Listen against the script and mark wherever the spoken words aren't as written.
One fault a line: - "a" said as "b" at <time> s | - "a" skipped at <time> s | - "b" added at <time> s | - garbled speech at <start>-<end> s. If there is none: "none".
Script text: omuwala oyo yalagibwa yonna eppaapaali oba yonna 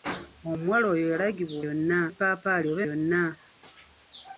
none